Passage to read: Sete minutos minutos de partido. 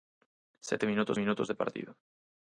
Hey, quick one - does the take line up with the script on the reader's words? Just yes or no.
yes